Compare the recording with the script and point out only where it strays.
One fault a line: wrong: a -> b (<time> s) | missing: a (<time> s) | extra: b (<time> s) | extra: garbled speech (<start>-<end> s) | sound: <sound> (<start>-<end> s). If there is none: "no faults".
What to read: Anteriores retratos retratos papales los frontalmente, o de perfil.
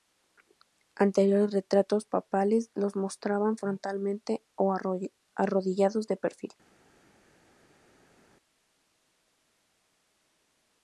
missing: retratos (2.0 s)
extra: mostraban (3.0 s)
extra: arrodillados (5.3 s)